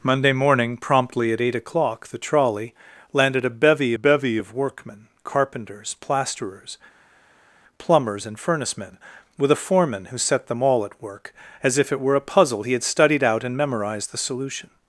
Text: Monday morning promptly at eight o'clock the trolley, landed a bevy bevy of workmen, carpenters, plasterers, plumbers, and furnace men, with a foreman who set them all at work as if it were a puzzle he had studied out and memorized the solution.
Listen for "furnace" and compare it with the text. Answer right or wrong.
right